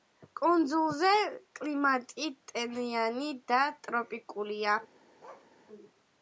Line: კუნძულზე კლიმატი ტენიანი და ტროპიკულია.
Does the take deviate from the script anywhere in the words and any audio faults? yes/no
yes